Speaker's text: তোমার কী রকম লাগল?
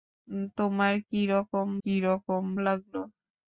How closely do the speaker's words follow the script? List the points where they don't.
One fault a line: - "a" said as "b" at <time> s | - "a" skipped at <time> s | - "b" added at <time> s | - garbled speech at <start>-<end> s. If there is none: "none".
- "কী রকম" added at 1.8 s